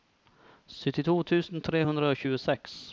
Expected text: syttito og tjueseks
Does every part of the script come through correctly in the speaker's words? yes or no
no